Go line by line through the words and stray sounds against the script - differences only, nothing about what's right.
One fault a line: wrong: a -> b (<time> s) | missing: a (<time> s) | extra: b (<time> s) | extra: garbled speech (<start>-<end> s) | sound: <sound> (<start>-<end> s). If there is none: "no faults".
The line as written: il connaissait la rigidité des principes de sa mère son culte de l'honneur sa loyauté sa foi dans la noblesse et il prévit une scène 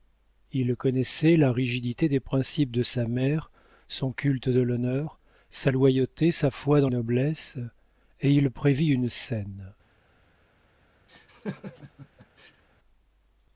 missing: la (6.9 s)
sound: laugh (11.1-12.6 s)